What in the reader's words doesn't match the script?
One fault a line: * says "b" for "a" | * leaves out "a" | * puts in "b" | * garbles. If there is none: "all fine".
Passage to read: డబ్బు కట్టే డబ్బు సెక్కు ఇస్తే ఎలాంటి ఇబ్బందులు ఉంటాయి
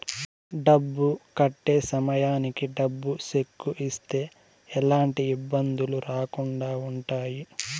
* puts in "సమయానికి"
* puts in "రాకుండా"